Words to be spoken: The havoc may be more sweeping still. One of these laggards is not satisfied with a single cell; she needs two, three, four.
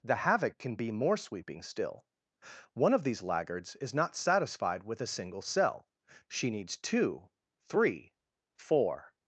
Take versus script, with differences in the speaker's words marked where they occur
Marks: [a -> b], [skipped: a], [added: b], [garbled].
The havoc [may -> can] be more sweeping still. One of these laggards is not satisfied with a single cell; she needs two, three, four.